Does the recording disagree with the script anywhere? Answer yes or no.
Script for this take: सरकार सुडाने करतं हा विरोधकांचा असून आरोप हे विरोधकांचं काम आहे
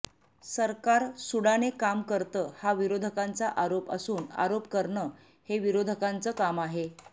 yes